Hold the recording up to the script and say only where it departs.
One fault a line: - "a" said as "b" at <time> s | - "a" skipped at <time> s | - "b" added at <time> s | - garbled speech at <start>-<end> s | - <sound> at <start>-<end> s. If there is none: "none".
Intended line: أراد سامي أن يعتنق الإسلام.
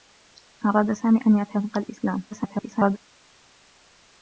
- garbled speech at 2.3-3.0 s